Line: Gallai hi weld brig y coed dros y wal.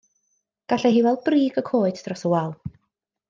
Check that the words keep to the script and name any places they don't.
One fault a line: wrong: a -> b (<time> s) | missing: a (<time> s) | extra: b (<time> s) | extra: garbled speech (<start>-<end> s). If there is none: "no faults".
no faults